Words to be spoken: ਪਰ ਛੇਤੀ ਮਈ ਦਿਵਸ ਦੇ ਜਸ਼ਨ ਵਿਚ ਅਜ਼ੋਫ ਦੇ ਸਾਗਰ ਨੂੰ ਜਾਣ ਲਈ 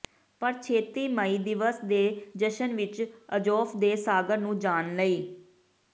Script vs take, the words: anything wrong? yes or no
no